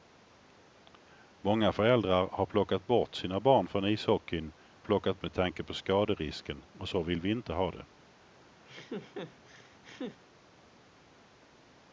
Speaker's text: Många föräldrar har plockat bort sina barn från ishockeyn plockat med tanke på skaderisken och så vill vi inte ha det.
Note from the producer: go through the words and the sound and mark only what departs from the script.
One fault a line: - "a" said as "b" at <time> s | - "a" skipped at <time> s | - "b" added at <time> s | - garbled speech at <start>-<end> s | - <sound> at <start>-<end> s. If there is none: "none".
- laugh at 8.6-10.2 s